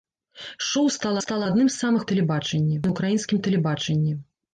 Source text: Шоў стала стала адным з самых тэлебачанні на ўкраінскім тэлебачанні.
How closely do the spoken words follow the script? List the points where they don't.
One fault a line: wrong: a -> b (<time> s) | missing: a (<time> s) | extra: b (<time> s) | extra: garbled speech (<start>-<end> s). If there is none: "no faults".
no faults